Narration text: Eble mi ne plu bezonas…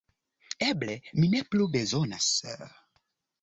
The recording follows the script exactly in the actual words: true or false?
true